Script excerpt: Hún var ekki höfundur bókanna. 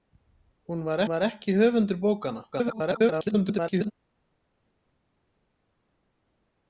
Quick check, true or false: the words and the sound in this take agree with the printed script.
false